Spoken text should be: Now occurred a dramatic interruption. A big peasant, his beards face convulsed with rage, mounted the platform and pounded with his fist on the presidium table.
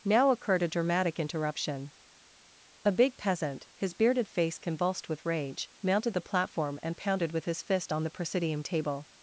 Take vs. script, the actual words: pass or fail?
fail